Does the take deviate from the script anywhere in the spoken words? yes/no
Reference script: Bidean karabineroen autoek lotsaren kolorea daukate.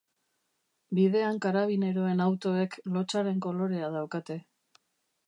no